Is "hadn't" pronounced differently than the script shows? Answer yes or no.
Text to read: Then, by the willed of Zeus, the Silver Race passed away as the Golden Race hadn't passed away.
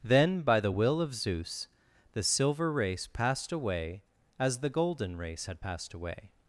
yes